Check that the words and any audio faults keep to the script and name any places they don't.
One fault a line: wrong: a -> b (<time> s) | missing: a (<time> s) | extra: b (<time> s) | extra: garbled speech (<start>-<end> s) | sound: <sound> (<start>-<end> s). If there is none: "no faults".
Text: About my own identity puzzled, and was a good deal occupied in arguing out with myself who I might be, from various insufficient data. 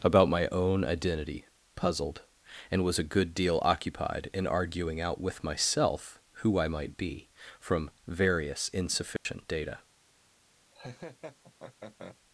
sound: dropout (9.2-9.3 s)
sound: laugh (10.7-12.2 s)